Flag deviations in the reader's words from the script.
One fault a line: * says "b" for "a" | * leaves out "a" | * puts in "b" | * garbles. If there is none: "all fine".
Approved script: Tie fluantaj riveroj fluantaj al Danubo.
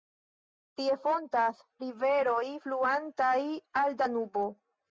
* says "fontas" for "fluantaj"